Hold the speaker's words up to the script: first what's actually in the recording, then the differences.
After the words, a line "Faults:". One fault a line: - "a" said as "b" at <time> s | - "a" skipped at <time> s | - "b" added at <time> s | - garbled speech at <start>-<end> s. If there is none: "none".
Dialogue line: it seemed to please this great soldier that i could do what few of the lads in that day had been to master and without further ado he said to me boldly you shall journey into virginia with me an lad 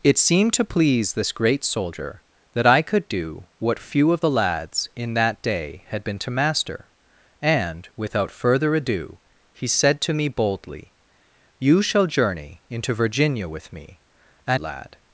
it seemed to please this great soldier that i could do what few of the lads in that day had been to master and without further ado he said to me boldly you shall journey into virginia with me an lad
Faults:
none